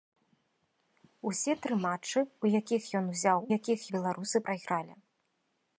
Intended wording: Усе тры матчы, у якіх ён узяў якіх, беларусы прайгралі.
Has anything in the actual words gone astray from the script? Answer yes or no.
no